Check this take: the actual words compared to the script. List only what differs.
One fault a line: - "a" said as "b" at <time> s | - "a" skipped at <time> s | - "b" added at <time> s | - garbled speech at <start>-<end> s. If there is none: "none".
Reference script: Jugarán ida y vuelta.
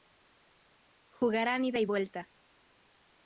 none